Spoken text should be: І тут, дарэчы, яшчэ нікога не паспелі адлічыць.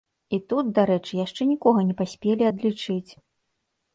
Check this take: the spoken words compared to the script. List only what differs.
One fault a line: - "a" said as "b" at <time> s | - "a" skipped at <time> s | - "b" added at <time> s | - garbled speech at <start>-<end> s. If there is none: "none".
none